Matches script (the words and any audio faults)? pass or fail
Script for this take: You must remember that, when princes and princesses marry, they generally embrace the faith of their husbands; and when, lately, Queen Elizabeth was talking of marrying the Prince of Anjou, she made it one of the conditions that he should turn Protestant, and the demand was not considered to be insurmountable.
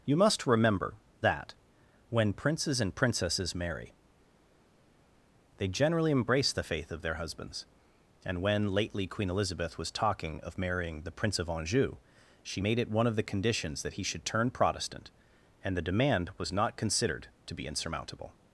pass